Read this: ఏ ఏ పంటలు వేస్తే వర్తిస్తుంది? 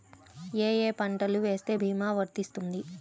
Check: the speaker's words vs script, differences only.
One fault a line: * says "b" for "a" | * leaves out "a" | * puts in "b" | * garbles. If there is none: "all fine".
* puts in "భీమా"